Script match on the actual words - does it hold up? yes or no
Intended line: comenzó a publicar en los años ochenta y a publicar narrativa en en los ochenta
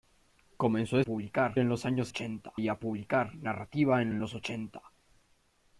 yes